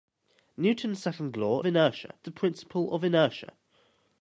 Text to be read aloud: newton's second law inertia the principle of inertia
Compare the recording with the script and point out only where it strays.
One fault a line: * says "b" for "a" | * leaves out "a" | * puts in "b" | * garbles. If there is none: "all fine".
all fine